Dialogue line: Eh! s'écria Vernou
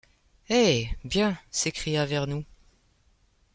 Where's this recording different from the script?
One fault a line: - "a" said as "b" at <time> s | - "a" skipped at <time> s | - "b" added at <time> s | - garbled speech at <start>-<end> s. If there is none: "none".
- "bien" added at 1.0 s